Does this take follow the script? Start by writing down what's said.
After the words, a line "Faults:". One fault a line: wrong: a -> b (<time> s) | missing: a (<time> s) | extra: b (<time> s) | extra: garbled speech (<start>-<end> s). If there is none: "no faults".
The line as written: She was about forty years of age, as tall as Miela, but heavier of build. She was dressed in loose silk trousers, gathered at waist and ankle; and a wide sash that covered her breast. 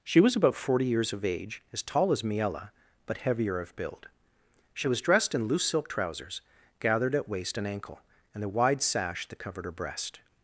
She was about forty years of age, as tall as Miela, but heavier of build. She was dressed in loose silk trousers, gathered at waist and ankle; and a wide sash that covered her breast.
Faults:
no faults